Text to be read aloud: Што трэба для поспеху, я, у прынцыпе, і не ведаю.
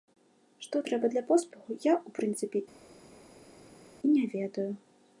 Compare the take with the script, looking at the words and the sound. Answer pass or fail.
pass